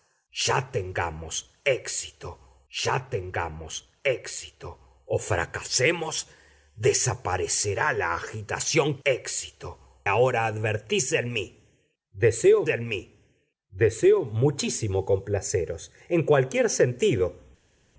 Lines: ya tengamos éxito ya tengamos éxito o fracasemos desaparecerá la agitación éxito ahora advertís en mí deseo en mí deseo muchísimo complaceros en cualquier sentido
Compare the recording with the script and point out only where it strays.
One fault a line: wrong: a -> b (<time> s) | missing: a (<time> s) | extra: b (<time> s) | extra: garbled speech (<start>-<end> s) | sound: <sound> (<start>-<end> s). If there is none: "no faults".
no faults